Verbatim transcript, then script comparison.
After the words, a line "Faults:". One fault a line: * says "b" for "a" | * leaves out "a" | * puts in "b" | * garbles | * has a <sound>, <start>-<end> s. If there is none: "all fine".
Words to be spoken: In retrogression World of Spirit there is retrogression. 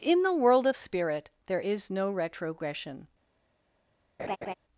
In the World of Spirit there is no retrogression.
Faults:
* says "the" for "retrogression"
* puts in "no"
* has a laugh, 4.2-4.5 s